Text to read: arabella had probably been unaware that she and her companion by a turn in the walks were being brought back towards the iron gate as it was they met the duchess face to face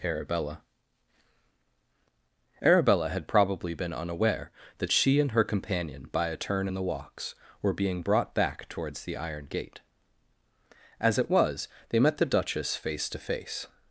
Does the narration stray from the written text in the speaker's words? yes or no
yes